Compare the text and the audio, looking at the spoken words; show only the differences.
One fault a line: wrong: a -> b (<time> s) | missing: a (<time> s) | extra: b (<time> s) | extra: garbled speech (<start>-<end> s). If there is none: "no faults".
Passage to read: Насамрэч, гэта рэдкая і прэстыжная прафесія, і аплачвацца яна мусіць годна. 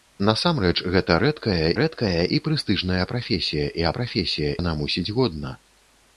extra: рэдкая (1.8 s)
wrong: аплачвацца -> прафесія (4.0 s)